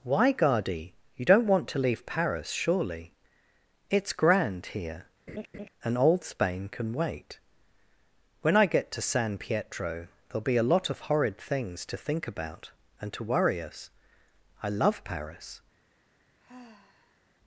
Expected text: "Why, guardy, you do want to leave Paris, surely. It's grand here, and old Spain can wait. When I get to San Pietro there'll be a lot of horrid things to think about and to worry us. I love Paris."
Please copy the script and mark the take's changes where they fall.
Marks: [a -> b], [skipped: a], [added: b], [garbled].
"Why, guardy, you [do -> don't] want to leave Paris, surely. It's grand here, and old Spain can wait. When I get to San Pietro there'll be a lot of horrid things to think about and to worry us. I love Paris."